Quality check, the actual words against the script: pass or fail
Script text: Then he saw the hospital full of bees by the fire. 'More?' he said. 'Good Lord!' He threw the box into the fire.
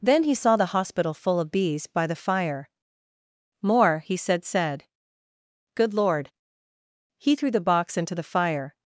fail